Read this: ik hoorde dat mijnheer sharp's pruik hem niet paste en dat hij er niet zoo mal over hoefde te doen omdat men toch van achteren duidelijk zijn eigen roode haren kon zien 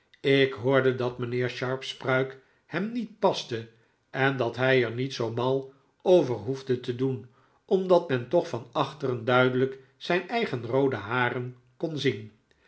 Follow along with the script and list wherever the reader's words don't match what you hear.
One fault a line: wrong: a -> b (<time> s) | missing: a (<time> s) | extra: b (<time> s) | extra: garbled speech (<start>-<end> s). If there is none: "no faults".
no faults